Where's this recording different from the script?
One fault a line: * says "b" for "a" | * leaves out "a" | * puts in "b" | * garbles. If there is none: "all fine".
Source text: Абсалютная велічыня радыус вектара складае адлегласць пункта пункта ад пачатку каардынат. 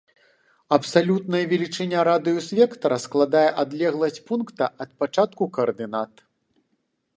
* leaves out "пункта"